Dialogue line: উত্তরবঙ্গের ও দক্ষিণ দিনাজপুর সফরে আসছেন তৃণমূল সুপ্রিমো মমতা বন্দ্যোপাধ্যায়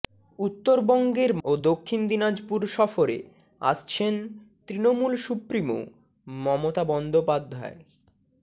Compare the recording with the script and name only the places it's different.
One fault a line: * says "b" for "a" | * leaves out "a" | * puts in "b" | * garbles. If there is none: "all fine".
all fine